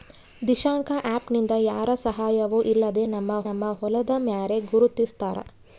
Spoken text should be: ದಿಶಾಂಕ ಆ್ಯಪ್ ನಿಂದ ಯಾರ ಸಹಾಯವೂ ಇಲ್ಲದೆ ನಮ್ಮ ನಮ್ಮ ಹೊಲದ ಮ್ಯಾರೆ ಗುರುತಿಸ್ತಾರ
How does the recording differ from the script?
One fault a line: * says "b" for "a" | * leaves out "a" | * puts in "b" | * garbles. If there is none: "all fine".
all fine